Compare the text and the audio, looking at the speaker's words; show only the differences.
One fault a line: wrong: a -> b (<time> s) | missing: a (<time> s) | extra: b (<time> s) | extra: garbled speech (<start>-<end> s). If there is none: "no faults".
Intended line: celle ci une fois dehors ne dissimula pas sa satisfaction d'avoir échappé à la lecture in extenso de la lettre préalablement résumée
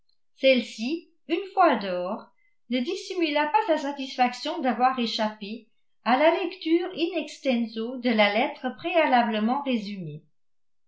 no faults